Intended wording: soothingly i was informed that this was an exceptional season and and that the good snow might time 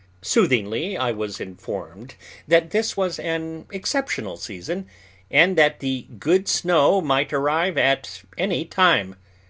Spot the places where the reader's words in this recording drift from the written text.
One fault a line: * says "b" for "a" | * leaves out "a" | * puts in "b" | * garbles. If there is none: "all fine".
* leaves out "and"
* puts in "arrive at any"